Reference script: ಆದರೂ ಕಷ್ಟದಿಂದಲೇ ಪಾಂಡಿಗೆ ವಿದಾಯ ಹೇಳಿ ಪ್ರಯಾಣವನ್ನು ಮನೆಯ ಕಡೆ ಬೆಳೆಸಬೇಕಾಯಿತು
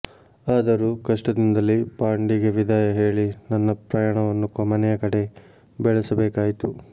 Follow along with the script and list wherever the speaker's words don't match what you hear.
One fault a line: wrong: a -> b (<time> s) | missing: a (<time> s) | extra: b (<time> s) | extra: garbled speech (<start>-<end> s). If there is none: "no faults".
extra: ನನ್ನ (3.5 s)